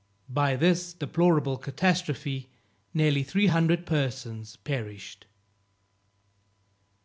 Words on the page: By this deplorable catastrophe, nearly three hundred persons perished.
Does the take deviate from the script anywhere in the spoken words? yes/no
no